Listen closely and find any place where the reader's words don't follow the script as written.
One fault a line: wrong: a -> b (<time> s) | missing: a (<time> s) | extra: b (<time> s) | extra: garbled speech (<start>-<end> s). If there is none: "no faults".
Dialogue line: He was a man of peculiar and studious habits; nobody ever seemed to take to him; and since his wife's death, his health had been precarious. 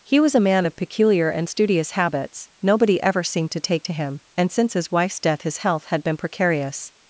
no faults